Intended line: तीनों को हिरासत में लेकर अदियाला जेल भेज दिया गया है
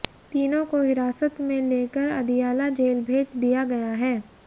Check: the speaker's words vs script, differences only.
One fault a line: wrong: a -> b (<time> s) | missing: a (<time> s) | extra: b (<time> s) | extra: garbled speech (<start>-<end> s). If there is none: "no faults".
no faults